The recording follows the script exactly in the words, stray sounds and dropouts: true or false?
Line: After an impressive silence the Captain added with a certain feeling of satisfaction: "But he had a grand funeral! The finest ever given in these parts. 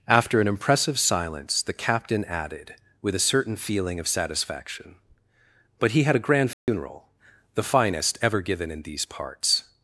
false